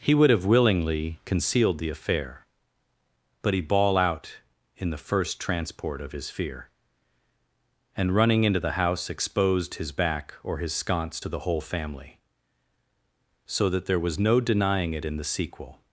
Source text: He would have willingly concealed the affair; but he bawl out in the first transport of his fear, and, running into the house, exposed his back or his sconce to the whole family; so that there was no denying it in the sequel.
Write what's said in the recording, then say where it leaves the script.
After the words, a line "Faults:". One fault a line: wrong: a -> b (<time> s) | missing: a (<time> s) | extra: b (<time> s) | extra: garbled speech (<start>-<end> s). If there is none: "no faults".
He would have willingly concealed the affair; but he bawl out in the first transport of his fear, and, running into the house, exposed his back or his sconce to the whole family; so that there was no denying it in the sequel.
Faults:
no faults